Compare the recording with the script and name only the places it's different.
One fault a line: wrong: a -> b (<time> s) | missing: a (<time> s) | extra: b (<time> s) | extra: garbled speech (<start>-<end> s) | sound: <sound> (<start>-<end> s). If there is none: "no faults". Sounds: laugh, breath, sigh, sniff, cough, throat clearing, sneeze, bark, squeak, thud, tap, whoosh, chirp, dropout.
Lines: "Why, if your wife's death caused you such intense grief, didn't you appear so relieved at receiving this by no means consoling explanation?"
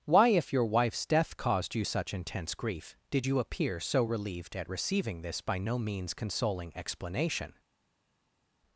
wrong: didn't -> did (3.1 s)